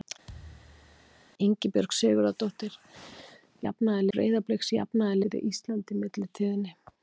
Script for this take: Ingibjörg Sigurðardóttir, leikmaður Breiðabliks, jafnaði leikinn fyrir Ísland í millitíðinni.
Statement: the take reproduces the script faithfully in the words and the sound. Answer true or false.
false